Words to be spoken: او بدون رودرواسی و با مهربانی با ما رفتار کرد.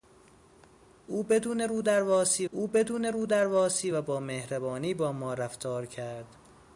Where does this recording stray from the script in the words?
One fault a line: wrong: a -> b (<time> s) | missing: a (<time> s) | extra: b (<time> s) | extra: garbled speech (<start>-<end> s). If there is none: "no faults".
extra: او بدون رودرواسی (2.5 s)